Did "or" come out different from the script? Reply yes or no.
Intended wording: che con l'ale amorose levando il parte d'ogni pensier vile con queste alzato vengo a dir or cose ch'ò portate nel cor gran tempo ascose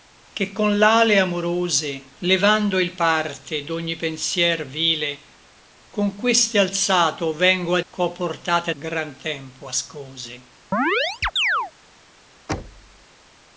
yes